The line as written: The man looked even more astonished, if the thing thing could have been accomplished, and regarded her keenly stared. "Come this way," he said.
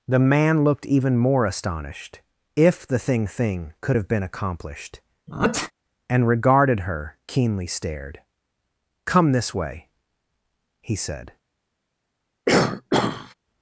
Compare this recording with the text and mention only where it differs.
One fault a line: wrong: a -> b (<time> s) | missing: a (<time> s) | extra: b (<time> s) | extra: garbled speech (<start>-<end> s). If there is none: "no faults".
no faults